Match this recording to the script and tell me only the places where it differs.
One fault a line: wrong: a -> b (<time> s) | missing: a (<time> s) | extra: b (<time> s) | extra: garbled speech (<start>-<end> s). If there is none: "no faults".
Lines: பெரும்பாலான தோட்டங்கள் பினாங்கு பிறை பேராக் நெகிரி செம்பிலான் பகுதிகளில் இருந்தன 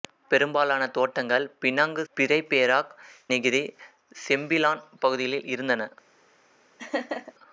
no faults